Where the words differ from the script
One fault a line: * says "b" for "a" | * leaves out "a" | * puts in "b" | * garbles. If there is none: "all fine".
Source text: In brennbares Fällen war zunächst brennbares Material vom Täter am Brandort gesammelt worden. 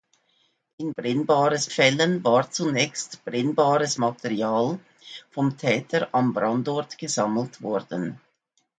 all fine